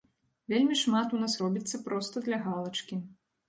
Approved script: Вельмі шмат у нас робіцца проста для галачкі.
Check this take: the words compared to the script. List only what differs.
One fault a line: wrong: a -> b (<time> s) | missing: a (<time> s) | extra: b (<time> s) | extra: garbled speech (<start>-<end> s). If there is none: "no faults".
no faults